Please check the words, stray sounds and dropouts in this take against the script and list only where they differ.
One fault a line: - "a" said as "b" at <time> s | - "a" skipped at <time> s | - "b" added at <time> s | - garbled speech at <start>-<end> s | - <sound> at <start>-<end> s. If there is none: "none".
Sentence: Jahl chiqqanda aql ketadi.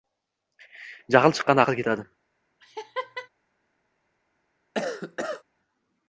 - laugh at 2.6-3.3 s
- cough at 4.7-5.4 s